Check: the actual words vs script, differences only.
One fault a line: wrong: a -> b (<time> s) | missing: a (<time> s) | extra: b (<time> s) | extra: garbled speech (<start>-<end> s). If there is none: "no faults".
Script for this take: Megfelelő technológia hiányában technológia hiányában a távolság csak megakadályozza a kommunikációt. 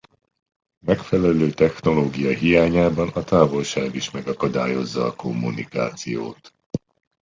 missing: technológia hiányában (3.1 s)
wrong: csak -> is (3.9 s)